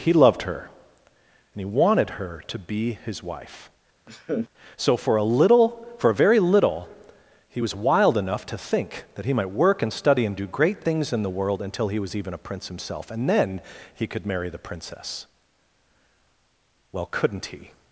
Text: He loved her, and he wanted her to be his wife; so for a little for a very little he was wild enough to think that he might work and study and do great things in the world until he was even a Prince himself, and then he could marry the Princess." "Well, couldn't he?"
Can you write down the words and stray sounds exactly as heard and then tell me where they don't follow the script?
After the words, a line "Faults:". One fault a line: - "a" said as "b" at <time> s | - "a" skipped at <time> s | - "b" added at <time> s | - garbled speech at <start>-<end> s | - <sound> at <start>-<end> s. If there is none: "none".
He loved her, and he wanted her to be his wife; so for a little for a very little he was wild enough to think that he might work and study and do great things in the world until he was even a Prince himself, and then he could marry the Princess." "Well, couldn't he?"
Faults:
- laugh at 4.1-4.5 s